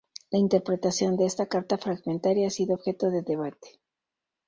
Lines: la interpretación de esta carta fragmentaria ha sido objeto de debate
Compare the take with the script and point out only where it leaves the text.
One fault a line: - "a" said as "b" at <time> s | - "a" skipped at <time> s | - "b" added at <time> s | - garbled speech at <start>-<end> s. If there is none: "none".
none